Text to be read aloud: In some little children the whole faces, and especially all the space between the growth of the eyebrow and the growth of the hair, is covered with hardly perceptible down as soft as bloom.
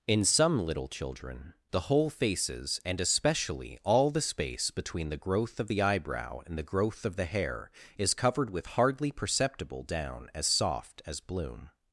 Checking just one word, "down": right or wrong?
right